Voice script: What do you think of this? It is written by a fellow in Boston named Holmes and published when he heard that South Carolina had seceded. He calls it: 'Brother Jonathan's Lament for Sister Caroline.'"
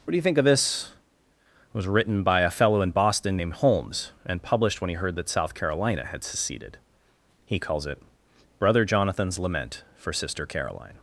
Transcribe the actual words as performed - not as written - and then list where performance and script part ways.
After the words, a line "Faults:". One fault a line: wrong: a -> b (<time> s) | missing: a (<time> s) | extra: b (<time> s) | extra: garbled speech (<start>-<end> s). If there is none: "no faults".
What do you think of this? It was written by a fellow in Boston named Holmes and published when he heard that South Carolina had seceded. He calls it: 'Brother Jonathan's Lament for Sister Caroline.'"
Faults:
wrong: is -> was (1.8 s)